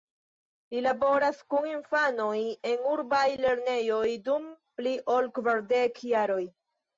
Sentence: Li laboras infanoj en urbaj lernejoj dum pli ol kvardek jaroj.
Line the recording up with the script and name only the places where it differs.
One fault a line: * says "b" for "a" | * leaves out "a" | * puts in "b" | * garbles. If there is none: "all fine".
* puts in "kun"